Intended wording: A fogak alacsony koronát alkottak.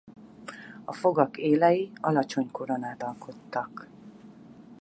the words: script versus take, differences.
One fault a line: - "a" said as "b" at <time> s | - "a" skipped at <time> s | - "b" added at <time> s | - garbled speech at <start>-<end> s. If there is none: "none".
- "élei" added at 1.4 s